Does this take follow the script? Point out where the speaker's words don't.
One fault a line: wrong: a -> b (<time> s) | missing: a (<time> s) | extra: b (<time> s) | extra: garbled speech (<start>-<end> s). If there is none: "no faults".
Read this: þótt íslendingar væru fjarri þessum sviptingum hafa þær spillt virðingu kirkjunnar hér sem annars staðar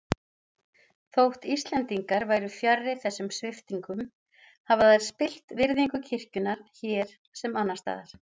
no faults